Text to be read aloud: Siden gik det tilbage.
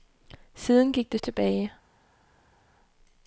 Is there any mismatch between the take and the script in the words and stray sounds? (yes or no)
no